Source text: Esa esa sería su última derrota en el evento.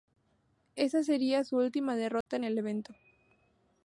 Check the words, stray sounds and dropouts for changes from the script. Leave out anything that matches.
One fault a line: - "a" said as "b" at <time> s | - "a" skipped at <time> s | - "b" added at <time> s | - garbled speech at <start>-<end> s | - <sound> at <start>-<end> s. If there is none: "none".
- "esa" skipped at 1.0 s
- dropout at 2.2-2.3 s